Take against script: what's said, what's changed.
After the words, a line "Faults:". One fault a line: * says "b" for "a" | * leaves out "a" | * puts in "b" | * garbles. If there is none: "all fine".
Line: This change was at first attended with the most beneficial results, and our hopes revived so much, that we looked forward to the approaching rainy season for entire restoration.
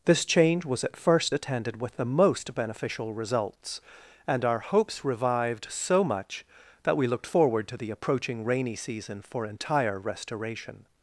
This change was at first attended with the most beneficial results, and our hopes revived so much, that we looked forward to the approaching rainy season for entire restoration.
Faults:
all fine